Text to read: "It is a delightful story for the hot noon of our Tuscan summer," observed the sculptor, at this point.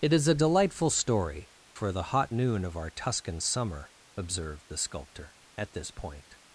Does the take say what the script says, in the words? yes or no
yes